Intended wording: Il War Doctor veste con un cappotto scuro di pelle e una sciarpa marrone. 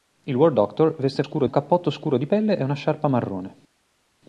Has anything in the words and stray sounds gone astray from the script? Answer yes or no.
yes